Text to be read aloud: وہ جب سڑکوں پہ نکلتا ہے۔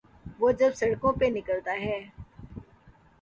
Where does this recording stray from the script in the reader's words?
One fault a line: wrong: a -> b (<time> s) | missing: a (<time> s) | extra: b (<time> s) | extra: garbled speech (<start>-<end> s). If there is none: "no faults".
no faults